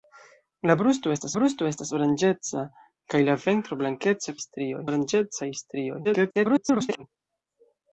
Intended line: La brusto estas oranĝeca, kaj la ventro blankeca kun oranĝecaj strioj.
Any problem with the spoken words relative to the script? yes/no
yes